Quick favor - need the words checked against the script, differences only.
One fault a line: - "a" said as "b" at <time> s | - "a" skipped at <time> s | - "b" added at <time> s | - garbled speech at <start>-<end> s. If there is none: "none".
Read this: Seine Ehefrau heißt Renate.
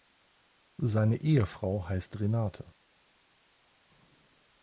none